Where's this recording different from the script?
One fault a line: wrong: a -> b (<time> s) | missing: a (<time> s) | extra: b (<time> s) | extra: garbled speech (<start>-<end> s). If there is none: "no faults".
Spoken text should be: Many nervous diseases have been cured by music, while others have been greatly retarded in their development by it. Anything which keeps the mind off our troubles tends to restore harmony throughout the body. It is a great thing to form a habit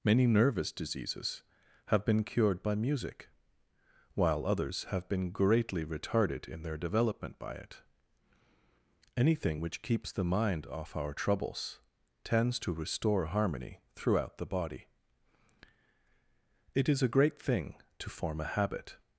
no faults